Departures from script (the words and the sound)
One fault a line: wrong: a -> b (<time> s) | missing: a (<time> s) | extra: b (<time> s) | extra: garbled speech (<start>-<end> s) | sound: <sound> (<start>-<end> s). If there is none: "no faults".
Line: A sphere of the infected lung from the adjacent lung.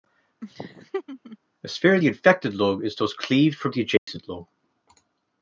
sound: laugh (0.4-1.4 s)
extra: is thus cleaved (2.8 s)
sound: dropout (4.0-4.1 s)